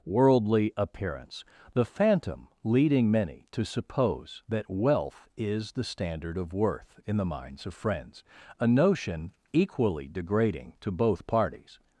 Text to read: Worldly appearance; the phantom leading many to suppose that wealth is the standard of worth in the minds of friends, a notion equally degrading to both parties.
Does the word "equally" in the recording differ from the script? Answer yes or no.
no